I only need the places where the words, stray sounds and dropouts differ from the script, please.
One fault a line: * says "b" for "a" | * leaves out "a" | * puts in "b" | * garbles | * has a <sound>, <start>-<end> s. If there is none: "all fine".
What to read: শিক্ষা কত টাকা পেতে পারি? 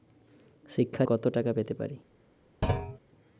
* has a thud, 2.6-3.0 s